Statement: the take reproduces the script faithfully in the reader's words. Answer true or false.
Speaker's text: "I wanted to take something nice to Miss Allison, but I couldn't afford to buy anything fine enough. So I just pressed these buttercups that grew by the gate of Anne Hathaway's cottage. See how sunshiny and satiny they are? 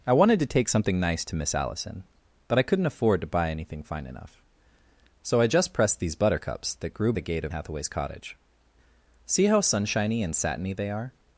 false